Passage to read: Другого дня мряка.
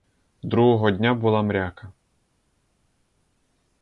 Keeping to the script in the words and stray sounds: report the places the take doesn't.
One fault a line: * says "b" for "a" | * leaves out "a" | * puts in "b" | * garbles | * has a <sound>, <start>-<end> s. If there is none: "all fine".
* puts in "була"